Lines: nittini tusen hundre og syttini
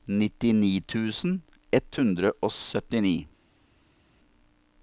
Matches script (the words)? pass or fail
fail